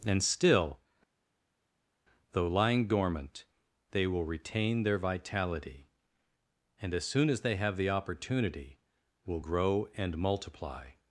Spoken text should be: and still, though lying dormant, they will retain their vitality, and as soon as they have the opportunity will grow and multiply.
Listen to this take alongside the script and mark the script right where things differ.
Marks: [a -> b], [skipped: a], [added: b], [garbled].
and still, though lying dormant, they will retain their vitality, and as soon as they have the opportunity will grow and multiply.